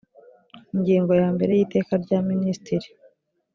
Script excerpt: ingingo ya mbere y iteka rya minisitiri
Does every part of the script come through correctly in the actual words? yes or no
yes